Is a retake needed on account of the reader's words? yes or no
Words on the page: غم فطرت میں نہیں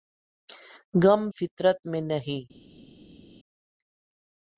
no